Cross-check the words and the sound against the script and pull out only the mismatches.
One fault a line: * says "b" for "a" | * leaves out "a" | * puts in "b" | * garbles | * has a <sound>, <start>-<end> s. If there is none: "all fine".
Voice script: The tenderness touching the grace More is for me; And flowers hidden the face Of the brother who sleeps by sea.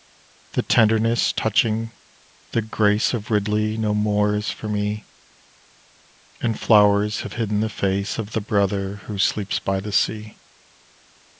* puts in "Of Ridley no"
* puts in "have"
* puts in "the"